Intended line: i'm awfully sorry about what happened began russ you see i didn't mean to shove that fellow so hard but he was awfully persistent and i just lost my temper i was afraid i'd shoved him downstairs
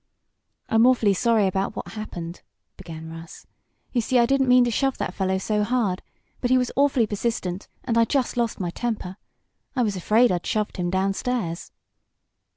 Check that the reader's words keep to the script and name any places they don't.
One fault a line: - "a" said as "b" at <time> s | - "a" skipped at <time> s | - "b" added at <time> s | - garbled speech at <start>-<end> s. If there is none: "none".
none